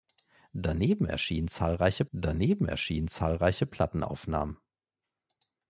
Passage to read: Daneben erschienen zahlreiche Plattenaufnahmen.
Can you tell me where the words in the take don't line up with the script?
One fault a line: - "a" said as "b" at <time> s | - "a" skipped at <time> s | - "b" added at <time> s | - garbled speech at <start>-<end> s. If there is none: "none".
- "daneben erschienen zahlreiche" added at 2.1 s